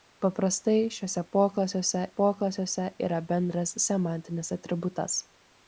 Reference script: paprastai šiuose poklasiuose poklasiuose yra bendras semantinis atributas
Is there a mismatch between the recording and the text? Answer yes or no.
no